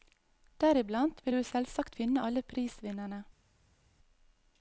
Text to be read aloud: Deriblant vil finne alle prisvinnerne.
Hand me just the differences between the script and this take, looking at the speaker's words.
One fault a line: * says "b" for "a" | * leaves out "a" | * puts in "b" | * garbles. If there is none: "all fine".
* puts in "du selvsagt"